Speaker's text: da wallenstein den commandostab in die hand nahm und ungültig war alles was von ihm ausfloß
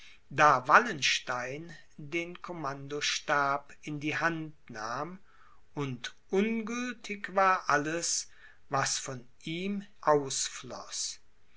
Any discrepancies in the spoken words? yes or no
no